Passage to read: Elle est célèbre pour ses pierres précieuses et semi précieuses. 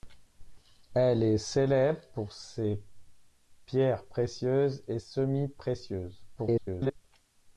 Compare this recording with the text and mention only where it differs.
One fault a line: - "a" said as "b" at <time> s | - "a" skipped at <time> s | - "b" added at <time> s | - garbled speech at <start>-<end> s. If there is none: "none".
- garbled speech at 6.4-7.0 s